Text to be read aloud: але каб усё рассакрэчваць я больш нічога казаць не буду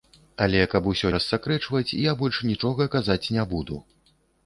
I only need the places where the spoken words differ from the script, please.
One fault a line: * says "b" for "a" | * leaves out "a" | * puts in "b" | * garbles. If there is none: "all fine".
all fine